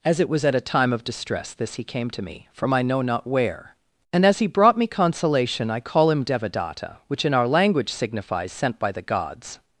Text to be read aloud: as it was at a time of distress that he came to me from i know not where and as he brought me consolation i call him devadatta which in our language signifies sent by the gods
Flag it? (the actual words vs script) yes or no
yes